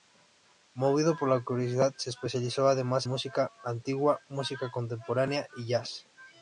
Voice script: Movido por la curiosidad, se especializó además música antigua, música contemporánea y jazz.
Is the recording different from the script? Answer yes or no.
no